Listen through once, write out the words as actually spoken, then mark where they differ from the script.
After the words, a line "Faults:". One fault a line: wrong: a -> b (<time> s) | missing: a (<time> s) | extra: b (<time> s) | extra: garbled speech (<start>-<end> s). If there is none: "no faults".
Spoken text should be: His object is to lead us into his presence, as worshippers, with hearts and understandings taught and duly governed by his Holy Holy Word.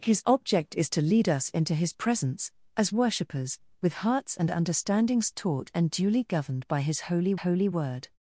His object is to lead us into his presence, as worshippers, with hearts and understandings taught and duly governed by his Holy Holy Word.
Faults:
no faults